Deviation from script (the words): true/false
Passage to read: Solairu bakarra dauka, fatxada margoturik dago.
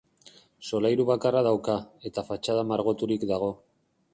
true